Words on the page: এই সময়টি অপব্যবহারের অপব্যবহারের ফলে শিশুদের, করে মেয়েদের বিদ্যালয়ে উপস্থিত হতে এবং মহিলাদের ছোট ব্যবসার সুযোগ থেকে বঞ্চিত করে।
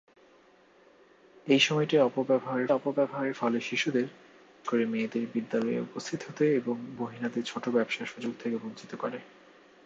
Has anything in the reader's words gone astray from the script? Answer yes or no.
no